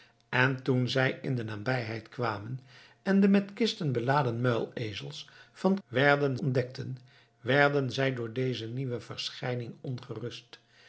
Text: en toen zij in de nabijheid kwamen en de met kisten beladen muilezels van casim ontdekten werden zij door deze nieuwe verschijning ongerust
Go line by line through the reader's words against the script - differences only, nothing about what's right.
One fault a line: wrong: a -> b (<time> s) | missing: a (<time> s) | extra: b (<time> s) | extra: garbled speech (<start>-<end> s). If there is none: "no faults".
wrong: casim -> werden (5.9 s)